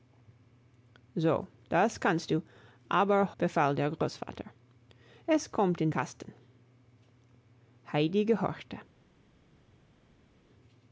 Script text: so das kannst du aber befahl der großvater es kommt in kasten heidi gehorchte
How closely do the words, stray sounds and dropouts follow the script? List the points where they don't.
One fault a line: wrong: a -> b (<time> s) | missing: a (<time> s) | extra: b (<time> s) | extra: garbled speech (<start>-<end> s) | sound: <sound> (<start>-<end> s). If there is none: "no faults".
no faults